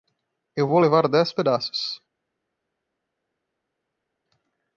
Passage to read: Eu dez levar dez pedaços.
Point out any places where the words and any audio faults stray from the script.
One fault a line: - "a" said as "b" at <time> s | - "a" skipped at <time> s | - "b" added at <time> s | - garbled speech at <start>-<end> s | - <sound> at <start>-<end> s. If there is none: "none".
- "dez" said as "vou" at 0.7 s